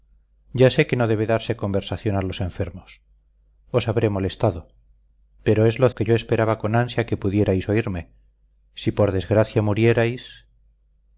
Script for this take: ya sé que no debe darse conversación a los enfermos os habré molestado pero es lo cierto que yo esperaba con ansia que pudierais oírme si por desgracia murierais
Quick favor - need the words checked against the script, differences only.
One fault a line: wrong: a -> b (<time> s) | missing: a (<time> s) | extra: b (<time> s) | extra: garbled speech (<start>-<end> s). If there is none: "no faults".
missing: cierto (5.9 s)